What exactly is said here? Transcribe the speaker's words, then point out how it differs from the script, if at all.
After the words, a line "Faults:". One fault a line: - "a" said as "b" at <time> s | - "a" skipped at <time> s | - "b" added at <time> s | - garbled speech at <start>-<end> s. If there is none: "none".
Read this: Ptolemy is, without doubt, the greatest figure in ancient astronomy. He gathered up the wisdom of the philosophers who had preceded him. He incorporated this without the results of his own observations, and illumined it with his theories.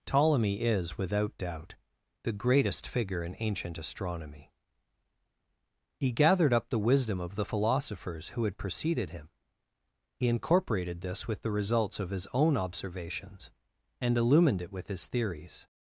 Ptolemy is, without doubt, the greatest figure in ancient astronomy. He gathered up the wisdom of the philosophers who had preceded him. He incorporated this with the results of his own observations, and illumined it with his theories.
Faults:
- "without" said as "with" at 11.3 s